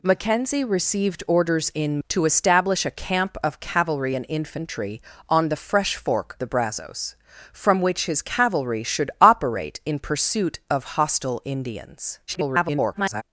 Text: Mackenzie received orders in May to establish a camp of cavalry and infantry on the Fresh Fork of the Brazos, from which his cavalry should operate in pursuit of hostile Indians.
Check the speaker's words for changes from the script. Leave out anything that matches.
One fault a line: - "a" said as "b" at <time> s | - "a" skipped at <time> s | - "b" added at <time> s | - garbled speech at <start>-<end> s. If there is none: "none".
- "May" skipped at 2.0 s
- "of" skipped at 6.4 s
- garbled speech at 12.3-13.2 s